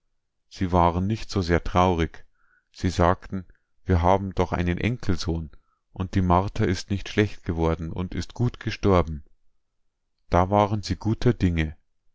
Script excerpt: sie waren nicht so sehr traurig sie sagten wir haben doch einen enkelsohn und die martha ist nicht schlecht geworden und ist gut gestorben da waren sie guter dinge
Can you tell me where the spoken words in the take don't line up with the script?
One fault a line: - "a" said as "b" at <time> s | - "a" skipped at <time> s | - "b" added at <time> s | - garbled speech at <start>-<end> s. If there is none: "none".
none